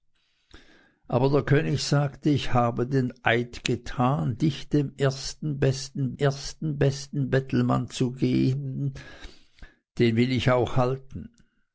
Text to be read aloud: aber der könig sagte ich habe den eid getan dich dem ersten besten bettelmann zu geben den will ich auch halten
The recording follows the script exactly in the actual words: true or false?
false